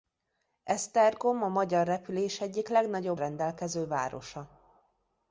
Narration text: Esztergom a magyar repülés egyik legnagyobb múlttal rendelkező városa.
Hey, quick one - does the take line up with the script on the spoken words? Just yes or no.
no